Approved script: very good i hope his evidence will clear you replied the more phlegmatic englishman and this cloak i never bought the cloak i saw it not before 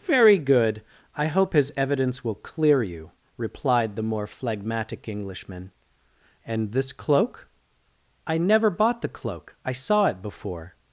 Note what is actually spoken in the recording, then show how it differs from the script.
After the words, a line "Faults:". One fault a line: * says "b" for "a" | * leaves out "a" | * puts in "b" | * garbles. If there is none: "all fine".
very good i hope his evidence will clear you replied the more phlegmatic englishman and this cloak i never bought the cloak i saw it before
Faults:
* leaves out "not"